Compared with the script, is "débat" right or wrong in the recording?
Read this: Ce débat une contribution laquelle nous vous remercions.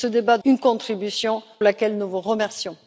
right